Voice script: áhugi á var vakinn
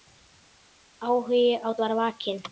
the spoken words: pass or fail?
pass